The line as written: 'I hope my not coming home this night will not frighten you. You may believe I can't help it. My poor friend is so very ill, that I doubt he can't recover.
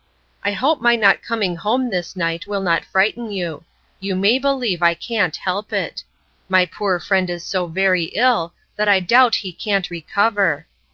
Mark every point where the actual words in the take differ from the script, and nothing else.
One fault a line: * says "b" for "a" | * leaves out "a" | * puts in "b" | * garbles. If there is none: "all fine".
all fine